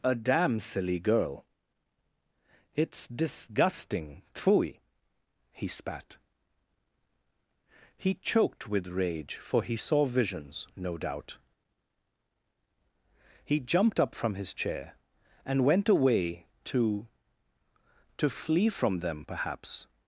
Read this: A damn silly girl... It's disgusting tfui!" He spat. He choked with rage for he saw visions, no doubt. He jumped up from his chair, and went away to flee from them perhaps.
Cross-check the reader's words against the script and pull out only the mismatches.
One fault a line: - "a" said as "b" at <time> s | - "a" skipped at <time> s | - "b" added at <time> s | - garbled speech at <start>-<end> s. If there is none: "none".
- "to" added at 18.2 s